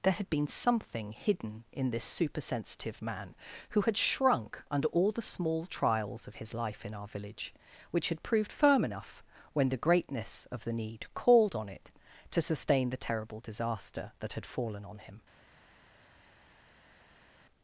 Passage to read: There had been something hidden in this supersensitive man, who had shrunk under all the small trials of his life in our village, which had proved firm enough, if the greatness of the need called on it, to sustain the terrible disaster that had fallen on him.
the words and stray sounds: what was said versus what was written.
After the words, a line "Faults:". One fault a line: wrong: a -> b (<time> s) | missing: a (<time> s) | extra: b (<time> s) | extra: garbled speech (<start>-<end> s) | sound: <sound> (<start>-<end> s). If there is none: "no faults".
There had been something hidden in this supersensitive man, who had shrunk under all the small trials of his life in our village, which had proved firm enough, when the greatness of the need called on it, to sustain the terrible disaster that had fallen on him.
Faults:
wrong: if -> when (9.5 s)